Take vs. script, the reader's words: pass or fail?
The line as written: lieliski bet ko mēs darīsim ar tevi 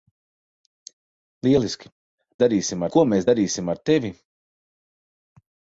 fail